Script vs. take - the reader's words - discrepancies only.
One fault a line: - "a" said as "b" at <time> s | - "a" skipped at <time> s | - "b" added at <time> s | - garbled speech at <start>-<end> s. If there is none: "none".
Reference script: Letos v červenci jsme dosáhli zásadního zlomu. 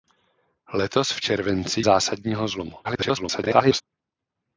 - "jsme dosáhli" skipped at 1.8 s
- garbled speech at 2.8-3.8 s